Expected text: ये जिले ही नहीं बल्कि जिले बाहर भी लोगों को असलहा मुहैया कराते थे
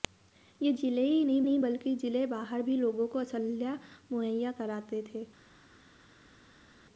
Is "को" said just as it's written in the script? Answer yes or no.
yes